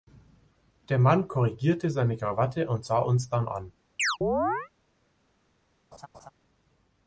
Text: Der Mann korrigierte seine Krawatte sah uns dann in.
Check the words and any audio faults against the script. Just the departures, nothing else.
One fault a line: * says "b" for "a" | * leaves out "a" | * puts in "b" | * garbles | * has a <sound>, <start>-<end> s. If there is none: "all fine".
* puts in "und"
* says "an" for "in"
* has a chirp, 4.0-4.7 s
* has a laugh, 5.9-6.3 s